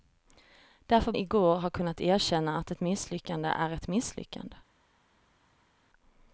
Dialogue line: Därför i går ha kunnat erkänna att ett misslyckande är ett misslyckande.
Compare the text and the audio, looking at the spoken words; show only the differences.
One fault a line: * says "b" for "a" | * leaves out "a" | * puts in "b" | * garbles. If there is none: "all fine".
all fine